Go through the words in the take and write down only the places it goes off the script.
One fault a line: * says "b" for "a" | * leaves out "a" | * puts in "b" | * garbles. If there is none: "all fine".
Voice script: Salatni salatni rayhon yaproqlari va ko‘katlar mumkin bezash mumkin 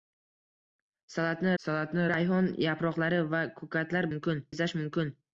all fine